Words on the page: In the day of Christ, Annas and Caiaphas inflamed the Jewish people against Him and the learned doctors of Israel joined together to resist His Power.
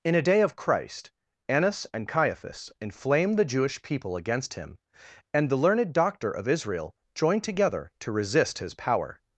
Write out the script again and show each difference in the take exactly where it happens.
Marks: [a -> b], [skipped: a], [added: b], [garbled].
In [the -> a] day of Christ, Annas and Caiaphas inflamed the Jewish people against Him and the learned [doctors -> doctor] of Israel joined together to resist His Power.